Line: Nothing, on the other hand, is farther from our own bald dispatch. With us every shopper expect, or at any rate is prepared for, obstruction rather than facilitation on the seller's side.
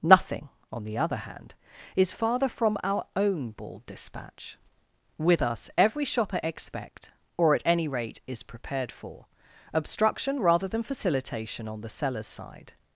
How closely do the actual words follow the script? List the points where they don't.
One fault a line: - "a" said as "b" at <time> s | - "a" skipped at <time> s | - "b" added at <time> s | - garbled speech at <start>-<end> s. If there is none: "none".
none